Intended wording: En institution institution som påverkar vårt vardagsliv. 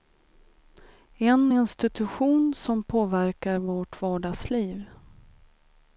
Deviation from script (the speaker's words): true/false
true